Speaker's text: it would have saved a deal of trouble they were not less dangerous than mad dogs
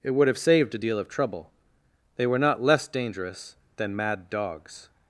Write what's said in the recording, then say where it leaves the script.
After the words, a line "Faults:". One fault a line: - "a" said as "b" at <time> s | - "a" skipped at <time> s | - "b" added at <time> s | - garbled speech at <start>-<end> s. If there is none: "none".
it would have saved a deal of trouble they were not less dangerous than mad dogs
Faults:
none